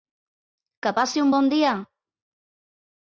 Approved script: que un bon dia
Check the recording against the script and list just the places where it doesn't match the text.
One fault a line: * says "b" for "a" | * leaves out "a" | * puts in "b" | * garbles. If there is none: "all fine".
* puts in "passi"